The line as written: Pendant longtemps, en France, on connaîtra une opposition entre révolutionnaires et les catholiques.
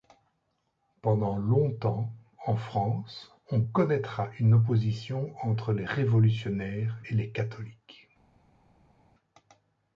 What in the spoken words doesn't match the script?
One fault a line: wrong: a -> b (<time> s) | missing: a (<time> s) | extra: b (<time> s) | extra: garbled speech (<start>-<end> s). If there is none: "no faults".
extra: les (5.7 s)